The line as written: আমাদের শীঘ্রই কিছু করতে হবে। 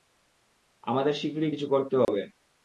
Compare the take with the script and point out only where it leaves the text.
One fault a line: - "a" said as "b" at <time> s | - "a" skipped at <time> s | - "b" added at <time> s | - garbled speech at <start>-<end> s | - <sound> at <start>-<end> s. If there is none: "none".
- dropout at 2.0-2.1 s